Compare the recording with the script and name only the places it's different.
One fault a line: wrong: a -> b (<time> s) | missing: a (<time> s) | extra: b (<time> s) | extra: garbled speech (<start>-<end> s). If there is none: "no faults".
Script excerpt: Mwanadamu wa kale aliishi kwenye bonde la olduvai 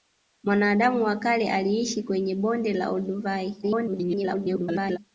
extra: garbled speech (3.6-5.0 s)